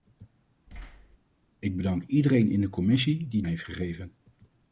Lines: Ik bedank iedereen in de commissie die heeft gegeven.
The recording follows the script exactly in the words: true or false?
true